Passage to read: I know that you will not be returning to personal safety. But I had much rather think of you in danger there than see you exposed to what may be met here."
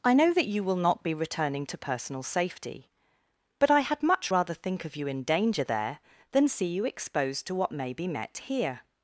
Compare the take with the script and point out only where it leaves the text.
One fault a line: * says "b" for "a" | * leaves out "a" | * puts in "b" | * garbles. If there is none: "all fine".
all fine